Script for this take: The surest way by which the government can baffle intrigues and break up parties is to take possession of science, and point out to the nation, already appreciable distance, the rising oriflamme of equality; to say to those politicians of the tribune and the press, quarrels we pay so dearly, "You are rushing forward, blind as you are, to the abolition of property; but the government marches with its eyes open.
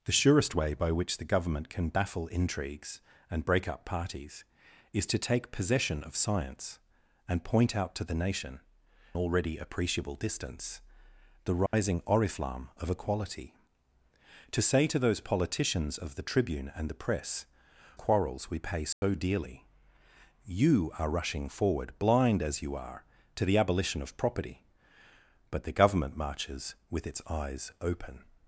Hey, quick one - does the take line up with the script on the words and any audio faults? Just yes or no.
no